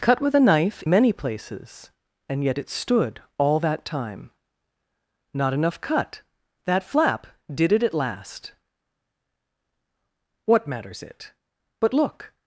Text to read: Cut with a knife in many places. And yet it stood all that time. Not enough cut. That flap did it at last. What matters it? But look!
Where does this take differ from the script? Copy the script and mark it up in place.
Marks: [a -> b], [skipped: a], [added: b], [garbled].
Cut with a knife [skipped: in] many places. And yet it stood all that time. Not enough cut. That flap did it at last. What matters it? But look!